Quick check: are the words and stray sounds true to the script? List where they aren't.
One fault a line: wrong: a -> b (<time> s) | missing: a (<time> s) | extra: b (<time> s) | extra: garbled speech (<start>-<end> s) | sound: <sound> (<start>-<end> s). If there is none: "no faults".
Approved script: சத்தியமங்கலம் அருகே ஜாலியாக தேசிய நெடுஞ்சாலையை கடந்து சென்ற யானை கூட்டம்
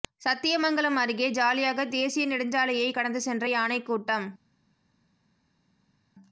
no faults